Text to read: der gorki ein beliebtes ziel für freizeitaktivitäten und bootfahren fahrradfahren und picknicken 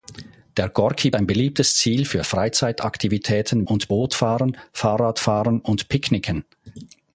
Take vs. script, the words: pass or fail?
pass